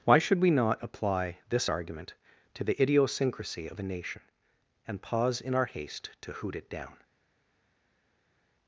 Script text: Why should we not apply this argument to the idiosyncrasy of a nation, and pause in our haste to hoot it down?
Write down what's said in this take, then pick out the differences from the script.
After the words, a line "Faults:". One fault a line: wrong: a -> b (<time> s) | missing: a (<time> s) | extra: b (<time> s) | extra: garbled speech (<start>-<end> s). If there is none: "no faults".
Why should we not apply this argument to the idiosyncrasy of a nation, and pause in our haste to hoot it down?
Faults:
no faults